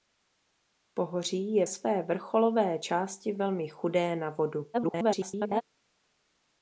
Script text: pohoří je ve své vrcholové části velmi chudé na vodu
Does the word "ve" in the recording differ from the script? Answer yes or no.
yes